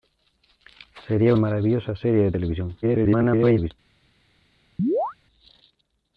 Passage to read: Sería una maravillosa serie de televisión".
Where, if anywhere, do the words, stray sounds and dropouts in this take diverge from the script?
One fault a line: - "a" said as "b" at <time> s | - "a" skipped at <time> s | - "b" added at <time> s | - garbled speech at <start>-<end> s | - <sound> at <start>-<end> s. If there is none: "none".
- "una" skipped at 1.4 s
- garbled speech at 2.8-3.7 s
- chirp at 4.8-5.1 s